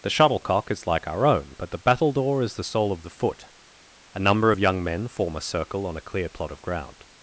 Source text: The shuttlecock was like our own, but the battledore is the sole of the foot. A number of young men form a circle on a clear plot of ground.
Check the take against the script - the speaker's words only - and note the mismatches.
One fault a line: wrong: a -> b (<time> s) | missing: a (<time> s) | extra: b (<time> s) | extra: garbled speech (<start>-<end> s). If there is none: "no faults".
wrong: was -> is (0.7 s)